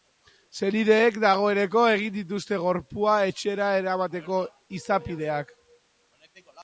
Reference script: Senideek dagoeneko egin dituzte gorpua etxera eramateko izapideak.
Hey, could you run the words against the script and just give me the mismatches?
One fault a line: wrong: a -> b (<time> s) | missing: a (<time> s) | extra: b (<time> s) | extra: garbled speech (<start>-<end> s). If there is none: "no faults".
no faults